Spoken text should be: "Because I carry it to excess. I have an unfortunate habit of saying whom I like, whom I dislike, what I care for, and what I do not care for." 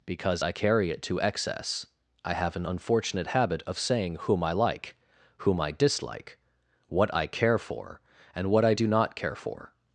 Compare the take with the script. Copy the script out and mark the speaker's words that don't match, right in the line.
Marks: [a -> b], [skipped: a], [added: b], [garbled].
"Because I carry it to excess. I have an unfortunate habit of saying whom I like, whom I dislike, what I care for, and what I do not care for."